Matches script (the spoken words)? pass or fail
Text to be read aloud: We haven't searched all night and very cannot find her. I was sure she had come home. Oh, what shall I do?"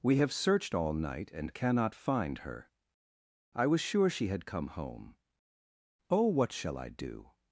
fail